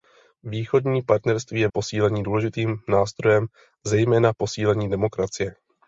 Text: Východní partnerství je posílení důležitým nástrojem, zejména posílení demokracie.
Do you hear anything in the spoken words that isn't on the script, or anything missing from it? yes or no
no